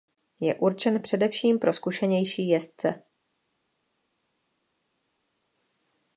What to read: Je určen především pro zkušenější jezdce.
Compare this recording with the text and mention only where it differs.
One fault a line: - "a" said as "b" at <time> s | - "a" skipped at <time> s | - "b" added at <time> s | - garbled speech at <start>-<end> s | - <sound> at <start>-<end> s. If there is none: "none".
none